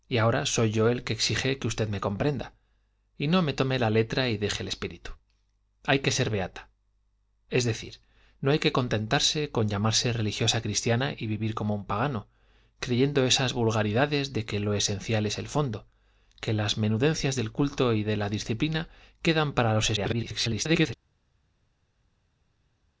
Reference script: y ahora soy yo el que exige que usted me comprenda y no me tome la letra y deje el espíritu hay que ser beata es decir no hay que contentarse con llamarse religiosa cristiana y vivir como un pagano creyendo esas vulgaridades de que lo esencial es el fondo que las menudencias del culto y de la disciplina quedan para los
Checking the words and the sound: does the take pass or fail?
fail